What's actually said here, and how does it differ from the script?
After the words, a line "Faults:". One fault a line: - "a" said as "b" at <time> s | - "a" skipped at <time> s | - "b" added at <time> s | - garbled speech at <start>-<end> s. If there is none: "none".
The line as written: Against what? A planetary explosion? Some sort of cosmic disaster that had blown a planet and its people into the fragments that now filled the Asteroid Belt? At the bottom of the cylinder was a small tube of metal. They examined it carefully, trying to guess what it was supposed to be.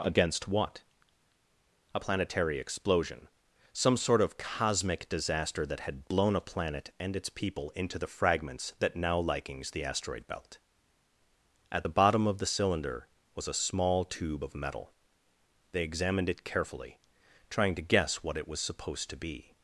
Against what? A planetary explosion? Some sort of cosmic disaster that had blown a planet and its people into the fragments that now likings the Asteroid Belt? At the bottom of the cylinder was a small tube of metal. They examined it carefully, trying to guess what it was supposed to be.
Faults:
- "filled" said as "likings" at 9.2 s